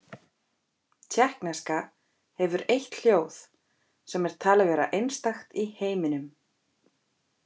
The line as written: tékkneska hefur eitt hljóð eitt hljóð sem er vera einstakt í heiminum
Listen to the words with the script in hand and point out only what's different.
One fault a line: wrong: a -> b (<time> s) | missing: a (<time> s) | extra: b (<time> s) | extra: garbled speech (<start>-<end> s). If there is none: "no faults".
missing: eitt hljóð (3.4 s)
extra: talið (4.5 s)